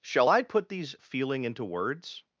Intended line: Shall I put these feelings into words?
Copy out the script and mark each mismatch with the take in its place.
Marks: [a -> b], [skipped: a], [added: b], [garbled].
Shall I put these [feelings -> feeling] into words?